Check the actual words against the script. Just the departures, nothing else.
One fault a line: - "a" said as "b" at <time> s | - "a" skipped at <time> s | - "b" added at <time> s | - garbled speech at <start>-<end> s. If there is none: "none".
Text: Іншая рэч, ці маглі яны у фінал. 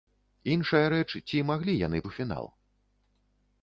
none